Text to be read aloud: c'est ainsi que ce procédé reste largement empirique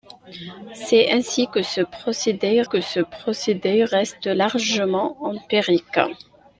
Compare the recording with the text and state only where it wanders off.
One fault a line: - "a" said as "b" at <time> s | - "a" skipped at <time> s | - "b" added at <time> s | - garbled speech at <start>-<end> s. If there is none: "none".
- "que ce procédé" added at 2.6 s